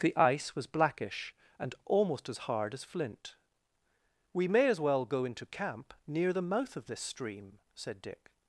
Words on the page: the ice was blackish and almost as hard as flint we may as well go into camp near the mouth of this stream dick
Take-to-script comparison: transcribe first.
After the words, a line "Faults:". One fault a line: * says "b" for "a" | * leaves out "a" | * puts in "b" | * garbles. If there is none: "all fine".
the ice was blackish and almost as hard as flint we may as well go into camp near the mouth of this stream said dick
Faults:
* puts in "said"